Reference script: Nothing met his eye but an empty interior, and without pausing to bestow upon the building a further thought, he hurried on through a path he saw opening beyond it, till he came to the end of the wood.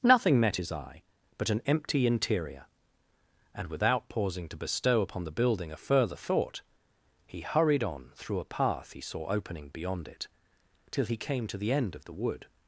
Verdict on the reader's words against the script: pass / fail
pass